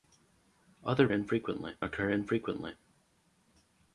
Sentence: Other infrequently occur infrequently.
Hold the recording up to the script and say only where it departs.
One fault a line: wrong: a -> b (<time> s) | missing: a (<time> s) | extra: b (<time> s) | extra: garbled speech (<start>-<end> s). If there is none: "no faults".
no faults